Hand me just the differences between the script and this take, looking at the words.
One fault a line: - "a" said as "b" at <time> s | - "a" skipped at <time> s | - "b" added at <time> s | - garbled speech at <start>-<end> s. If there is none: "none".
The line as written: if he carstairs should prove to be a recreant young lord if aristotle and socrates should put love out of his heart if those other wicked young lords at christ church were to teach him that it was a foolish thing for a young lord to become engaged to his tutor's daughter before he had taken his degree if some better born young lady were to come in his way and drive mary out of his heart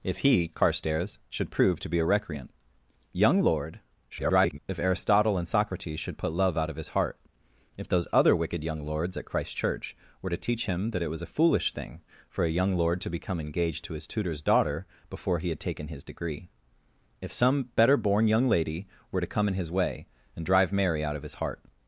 - garbled speech at 4.1-4.6 s